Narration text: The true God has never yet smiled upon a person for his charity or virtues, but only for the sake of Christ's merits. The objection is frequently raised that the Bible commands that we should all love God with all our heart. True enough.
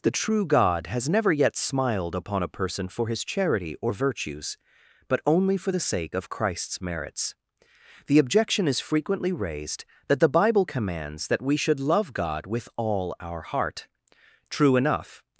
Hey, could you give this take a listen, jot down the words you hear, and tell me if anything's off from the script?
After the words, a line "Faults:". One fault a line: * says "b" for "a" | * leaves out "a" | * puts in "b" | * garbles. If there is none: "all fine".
The true God has never yet smiled upon a person for his charity or virtues, but only for the sake of Christ's merits. The objection is frequently raised that the Bible commands that we should love God with all our heart. True enough.
Faults:
* leaves out "all"